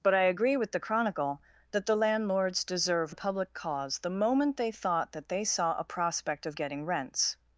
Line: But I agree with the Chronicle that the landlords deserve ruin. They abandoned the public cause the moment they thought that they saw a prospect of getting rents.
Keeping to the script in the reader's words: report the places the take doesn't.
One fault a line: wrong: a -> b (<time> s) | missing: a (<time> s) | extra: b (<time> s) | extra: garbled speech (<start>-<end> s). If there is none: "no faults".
missing: ruin They abandoned (3.1 s)